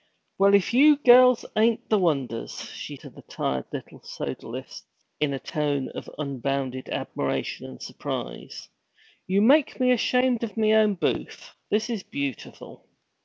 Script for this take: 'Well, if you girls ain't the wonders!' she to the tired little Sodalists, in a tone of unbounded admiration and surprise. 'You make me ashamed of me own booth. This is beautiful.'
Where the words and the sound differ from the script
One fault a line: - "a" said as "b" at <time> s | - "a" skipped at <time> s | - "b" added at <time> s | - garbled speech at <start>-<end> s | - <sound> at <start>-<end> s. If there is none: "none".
none